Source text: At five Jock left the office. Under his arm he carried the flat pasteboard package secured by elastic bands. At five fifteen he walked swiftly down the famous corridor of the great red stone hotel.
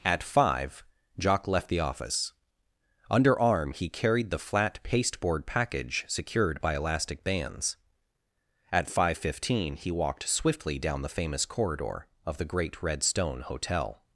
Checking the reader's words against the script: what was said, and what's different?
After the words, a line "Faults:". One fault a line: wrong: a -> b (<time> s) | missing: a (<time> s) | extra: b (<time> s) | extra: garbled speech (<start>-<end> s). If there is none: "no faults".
At five Jock left the office. Under arm he carried the flat pasteboard package secured by elastic bands. At five fifteen he walked swiftly down the famous corridor of the great red stone hotel.
Faults:
missing: his (3.4 s)